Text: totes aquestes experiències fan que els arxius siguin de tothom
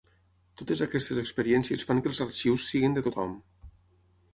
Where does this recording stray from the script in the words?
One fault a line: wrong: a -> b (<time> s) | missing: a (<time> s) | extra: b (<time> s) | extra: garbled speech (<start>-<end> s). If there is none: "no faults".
no faults